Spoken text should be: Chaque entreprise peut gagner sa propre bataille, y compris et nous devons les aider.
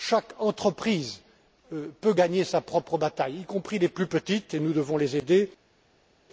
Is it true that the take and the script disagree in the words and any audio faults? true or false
true